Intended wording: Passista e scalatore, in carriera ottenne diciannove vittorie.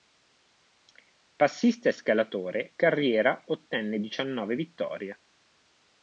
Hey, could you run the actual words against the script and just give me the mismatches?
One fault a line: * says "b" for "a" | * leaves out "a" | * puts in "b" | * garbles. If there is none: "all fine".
* leaves out "in"